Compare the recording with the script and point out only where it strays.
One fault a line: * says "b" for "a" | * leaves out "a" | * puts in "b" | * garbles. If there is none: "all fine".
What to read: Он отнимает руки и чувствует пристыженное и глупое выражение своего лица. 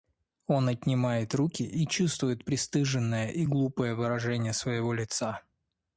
all fine